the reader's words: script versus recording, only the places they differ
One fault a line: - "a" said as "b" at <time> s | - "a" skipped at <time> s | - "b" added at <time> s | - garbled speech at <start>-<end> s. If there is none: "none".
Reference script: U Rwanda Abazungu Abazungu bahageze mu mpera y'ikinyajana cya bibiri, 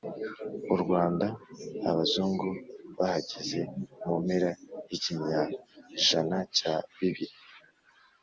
- "Abazungu" skipped at 2.5 s